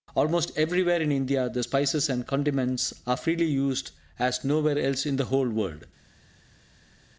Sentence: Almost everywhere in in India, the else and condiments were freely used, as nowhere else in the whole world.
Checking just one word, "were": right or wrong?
wrong